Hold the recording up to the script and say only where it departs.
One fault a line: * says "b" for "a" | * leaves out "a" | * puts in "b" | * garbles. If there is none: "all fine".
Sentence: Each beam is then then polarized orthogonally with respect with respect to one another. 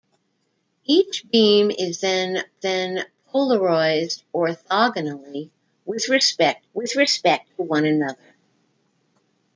all fine